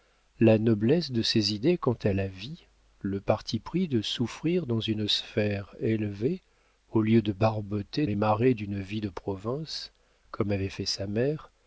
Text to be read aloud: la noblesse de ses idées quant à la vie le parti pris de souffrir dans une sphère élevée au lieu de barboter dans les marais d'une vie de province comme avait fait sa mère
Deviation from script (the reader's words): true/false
true